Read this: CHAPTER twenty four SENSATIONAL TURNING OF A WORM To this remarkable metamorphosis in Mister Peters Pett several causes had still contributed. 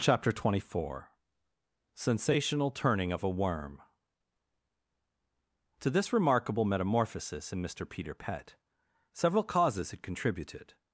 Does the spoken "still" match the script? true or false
false